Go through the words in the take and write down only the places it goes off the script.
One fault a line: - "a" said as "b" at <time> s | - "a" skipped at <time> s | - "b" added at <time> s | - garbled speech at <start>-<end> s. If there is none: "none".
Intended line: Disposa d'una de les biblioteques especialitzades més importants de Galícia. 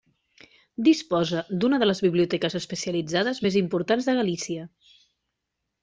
none